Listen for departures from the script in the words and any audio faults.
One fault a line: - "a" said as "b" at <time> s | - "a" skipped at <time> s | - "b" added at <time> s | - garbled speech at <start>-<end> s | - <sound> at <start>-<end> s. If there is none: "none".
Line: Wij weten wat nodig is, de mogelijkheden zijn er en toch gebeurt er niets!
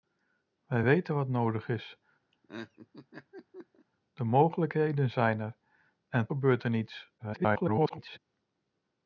- laugh at 2.3-3.9 s
- "toch" skipped at 6.3 s
- garbled speech at 7.2-8.2 s